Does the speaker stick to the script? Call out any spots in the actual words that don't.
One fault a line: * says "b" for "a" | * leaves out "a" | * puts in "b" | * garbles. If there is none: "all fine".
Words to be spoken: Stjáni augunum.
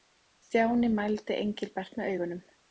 * puts in "mældi Engilbert með"